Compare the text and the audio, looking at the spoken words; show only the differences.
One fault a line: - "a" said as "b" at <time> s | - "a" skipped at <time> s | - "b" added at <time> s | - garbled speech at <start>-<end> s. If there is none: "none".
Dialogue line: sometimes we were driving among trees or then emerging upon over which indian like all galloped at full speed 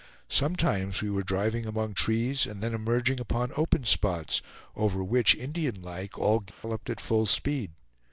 - "or" said as "and" at 2.5 s
- "open spots" added at 3.5 s